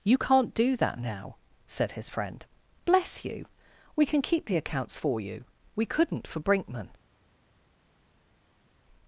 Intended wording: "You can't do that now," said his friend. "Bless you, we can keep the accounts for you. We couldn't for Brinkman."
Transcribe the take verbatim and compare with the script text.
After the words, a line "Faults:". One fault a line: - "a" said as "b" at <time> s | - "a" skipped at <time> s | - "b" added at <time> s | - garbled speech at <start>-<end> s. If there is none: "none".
"You can't do that now," said his friend. "Bless you, we can keep the accounts for you. We couldn't for Brinkman."
Faults:
none